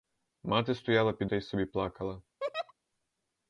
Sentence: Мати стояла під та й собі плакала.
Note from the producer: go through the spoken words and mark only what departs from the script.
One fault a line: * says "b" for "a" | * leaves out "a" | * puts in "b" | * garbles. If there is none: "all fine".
all fine